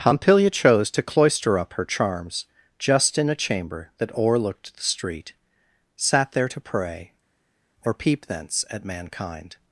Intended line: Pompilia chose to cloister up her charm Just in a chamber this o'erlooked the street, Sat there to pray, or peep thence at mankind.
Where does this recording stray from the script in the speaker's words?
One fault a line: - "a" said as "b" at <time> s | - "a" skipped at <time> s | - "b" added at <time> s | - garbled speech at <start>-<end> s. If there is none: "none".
- "charm" said as "charms" at 1.9 s
- "this" said as "that" at 4.0 s